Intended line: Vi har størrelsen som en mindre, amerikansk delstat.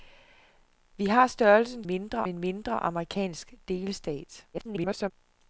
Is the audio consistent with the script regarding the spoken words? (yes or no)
no